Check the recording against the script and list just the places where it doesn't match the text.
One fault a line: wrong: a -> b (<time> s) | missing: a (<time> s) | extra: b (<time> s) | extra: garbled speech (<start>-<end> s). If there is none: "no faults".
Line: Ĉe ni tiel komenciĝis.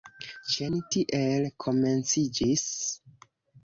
no faults